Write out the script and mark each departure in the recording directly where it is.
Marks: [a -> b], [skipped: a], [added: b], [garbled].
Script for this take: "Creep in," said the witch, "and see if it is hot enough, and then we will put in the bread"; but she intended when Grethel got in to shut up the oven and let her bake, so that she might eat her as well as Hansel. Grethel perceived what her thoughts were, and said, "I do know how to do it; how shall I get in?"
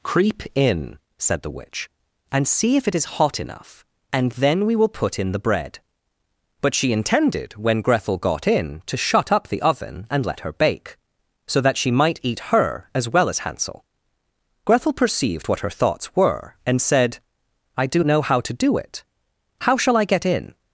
"Creep in," said the witch, "and see if it is hot enough, and then we will put in the bread"; but she intended when Grethel got in to shut up the oven and let her bake, so that she might eat her as well as Hansel. Grethel perceived what her thoughts were, and said, "I do know how to do it; how shall I get in?"